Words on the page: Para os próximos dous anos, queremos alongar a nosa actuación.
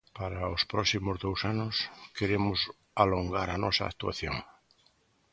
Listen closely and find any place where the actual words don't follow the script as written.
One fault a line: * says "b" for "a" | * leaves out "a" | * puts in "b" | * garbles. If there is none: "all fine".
all fine